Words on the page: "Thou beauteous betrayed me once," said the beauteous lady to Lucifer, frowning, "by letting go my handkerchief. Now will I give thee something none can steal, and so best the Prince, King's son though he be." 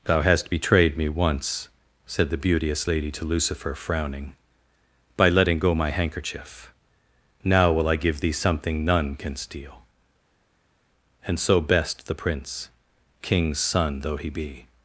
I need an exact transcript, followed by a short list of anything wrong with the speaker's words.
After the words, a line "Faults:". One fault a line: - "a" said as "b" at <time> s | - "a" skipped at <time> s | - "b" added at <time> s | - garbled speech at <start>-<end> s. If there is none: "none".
"Thou hast betrayed me once," said the beauteous lady to Lucifer, frowning, "by letting go my handkerchief. Now will I give thee something none can steal, and so best the Prince, King's son though he be."
Faults:
- "beauteous" said as "hast" at 0.2 s